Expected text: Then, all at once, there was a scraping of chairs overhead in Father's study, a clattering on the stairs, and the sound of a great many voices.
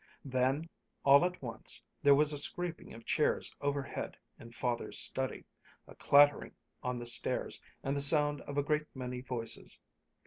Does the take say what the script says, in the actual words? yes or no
yes